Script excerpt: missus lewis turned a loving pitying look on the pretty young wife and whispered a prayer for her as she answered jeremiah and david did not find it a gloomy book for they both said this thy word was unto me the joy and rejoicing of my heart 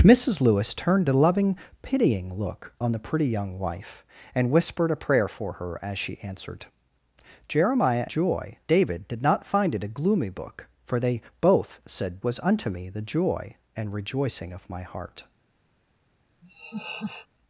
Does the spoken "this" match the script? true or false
false